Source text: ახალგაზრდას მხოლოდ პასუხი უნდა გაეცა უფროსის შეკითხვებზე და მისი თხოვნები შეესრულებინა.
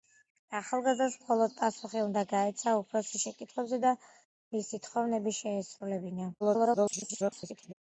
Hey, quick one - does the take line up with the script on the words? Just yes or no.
no